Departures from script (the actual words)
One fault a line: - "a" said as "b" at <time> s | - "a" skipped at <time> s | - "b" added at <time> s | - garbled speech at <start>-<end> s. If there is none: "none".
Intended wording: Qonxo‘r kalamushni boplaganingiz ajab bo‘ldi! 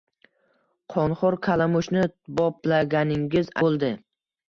- "ajab" skipped at 3.5 s